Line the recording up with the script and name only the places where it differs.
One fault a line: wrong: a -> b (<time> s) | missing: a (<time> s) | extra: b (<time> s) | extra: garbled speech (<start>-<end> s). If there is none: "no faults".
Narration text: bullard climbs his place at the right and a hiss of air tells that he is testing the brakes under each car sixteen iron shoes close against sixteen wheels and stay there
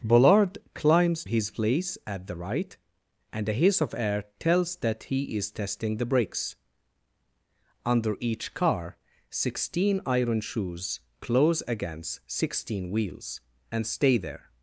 no faults